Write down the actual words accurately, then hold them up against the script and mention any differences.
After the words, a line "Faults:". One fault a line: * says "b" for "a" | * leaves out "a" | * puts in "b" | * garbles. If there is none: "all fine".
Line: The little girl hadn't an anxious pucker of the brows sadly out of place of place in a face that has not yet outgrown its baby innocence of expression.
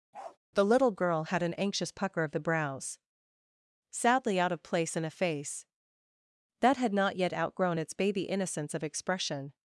The little girl had an anxious pucker of the brows sadly out of place in a face that had not yet outgrown its baby innocence of expression.
Faults:
* says "had" for "hadn't"
* leaves out "of place"
* says "had" for "has"